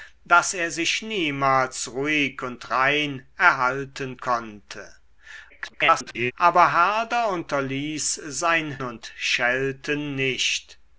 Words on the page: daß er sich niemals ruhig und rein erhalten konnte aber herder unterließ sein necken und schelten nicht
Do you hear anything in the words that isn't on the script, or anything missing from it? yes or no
yes